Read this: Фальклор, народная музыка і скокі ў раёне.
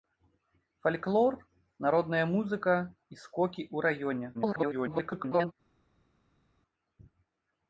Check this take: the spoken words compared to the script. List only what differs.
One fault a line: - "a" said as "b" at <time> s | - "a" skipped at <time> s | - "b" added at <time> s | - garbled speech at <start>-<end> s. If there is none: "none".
- garbled speech at 4.3-5.5 s